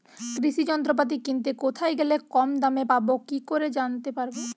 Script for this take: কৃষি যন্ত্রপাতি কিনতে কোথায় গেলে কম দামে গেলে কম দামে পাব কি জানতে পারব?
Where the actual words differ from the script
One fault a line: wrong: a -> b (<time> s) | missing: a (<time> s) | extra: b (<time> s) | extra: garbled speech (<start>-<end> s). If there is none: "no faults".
missing: গেলে কম দামে (2.8 s)
extra: করে (3.5 s)